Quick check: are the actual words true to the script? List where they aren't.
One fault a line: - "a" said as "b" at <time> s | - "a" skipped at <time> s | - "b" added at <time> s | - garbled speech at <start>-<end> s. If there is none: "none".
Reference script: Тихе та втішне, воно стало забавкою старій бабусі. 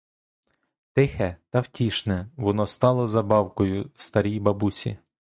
none